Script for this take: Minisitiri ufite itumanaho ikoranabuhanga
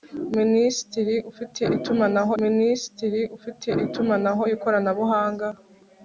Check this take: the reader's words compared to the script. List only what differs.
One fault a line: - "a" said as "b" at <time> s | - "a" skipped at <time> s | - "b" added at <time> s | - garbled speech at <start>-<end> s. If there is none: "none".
- "minisitiri ufite itumanaho" added at 2.4 s